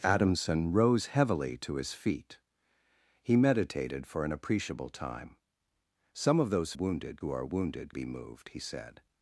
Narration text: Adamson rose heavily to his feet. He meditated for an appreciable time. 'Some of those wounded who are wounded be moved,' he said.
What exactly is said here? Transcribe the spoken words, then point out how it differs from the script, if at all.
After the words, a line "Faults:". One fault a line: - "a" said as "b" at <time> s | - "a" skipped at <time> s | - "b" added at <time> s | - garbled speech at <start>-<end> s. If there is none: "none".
Adamson rose heavily to his feet. He meditated for an appreciable time. 'Some of those wounded who are wounded be moved,' he said.
Faults:
none